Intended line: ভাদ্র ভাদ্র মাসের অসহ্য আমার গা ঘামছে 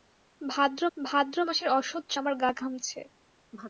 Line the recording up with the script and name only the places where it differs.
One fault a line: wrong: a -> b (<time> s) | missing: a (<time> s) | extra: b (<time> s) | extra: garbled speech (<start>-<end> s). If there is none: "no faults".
no faults